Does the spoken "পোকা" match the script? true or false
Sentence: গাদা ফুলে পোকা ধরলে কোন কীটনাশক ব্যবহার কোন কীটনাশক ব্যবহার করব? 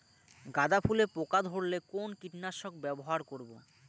true